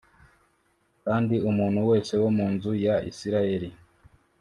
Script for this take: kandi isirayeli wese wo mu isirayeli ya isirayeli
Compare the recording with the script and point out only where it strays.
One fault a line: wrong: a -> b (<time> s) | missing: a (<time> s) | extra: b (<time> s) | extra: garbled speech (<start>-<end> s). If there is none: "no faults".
wrong: isirayeli -> umuntu (1.5 s)
wrong: isirayeli -> nzu (2.5 s)